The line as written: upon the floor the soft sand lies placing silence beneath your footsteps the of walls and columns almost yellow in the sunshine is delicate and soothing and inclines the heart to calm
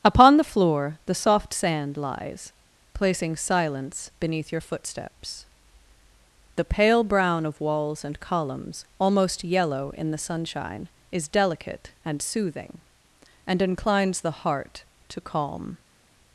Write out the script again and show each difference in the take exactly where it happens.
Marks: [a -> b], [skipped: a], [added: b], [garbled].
upon the floor the soft sand lies placing silence beneath your footsteps the [added: pale brown] of walls and columns almost yellow in the sunshine is delicate and soothing and inclines the heart to calm